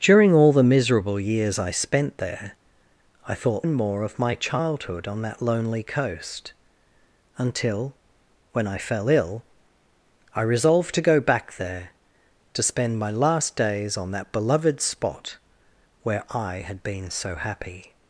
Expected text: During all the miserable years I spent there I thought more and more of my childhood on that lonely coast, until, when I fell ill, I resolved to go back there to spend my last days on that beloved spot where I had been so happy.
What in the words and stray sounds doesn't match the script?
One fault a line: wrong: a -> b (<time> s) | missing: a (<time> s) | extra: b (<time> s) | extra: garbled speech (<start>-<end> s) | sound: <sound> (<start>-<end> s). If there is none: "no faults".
missing: more (3.7 s)